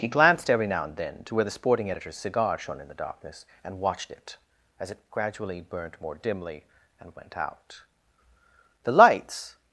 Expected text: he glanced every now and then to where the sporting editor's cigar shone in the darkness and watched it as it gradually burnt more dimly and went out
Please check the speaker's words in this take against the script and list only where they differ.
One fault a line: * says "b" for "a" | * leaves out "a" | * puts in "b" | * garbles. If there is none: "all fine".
* puts in "the lights"